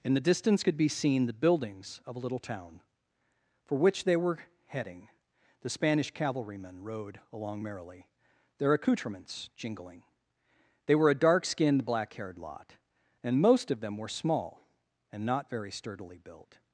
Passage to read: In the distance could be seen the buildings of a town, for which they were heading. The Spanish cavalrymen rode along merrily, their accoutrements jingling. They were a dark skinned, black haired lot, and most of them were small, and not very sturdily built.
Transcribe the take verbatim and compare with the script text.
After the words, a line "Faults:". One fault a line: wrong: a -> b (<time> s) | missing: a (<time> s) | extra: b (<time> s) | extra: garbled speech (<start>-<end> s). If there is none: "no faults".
In the distance could be seen the buildings of a little town, for which they were heading. The Spanish cavalrymen rode along merrily, their accoutrements jingling. They were a dark skinned, black haired lot, and most of them were small, and not very sturdily built.
Faults:
extra: little (2.2 s)